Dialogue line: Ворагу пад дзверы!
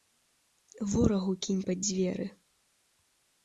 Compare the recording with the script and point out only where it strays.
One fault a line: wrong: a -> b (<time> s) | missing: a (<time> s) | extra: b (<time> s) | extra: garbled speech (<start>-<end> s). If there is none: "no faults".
extra: кінь (1.5 s)